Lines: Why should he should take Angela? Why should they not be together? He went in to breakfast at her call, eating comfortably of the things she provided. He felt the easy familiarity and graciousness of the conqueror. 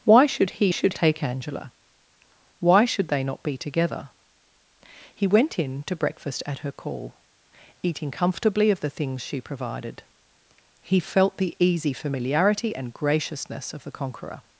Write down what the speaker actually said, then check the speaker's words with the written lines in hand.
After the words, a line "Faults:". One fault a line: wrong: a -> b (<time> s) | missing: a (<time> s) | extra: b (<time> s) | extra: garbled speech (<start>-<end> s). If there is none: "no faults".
Why should he should take Angela? Why should they not be together? He went in to breakfast at her call, eating comfortably of the things she provided. He felt the easy familiarity and graciousness of the conqueror.
Faults:
no faults